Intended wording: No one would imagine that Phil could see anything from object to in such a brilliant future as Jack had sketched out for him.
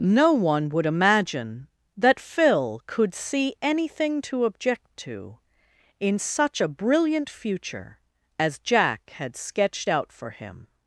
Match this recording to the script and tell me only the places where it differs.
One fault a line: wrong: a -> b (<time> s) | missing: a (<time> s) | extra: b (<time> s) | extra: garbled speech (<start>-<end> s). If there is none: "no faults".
wrong: from -> to (4.2 s)